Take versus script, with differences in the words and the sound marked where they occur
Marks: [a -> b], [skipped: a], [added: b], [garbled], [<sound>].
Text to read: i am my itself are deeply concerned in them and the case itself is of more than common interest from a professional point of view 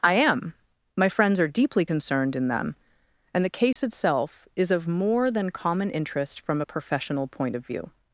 i am my [itself -> friends] are deeply concerned in them and the case [dropout] itself is of more than common interest from a professional point of view